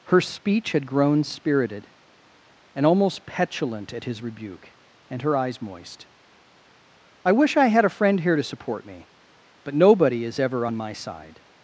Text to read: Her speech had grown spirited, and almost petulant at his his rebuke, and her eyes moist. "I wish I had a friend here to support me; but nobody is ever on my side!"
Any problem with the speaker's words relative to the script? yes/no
yes